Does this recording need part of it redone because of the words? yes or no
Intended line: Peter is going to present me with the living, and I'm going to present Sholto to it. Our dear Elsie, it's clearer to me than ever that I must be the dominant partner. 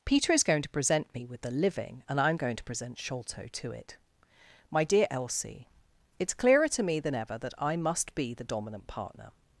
yes